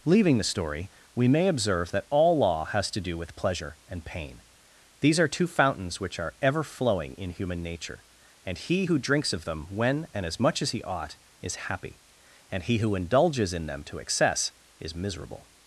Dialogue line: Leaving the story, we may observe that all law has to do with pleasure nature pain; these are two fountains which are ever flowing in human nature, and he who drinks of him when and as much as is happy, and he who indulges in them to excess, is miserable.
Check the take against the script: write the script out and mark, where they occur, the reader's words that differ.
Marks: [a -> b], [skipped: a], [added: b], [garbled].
Leaving the story, we may observe that all law has to do with pleasure [nature -> and] pain; these are two fountains which are ever flowing in human nature, and he who drinks of [him -> them] when and as much as [added: he ought] is happy, and he who indulges in them to excess, is miserable.